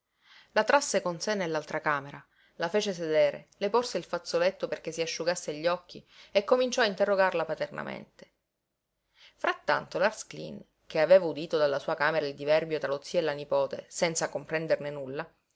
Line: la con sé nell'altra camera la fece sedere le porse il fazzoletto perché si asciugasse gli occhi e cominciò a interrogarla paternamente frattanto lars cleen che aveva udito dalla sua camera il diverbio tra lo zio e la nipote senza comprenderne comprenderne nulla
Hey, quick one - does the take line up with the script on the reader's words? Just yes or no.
no